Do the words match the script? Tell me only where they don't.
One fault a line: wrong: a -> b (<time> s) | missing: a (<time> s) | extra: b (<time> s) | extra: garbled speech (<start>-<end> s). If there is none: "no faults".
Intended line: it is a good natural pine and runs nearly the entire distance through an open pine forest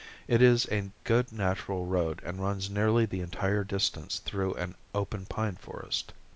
wrong: pine -> road (1.9 s)